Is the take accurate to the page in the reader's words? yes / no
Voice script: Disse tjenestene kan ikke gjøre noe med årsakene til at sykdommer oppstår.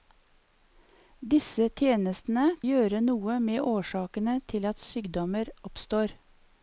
no